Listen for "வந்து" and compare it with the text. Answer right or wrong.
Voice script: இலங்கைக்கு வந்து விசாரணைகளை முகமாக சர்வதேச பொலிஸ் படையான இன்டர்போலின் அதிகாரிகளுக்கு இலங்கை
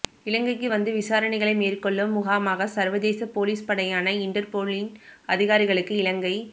right